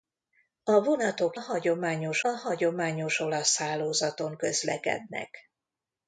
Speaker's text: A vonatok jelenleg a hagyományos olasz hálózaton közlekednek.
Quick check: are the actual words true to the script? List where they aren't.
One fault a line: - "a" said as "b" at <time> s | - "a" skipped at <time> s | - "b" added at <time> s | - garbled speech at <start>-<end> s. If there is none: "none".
- "jelenleg" said as "hagyományos" at 1.3 s